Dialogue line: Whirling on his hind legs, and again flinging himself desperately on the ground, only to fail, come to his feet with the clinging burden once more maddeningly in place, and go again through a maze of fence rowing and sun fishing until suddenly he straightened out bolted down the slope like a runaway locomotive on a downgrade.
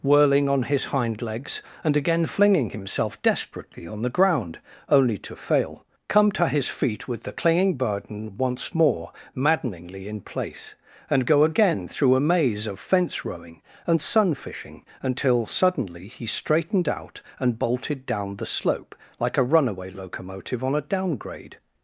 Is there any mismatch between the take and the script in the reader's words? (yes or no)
yes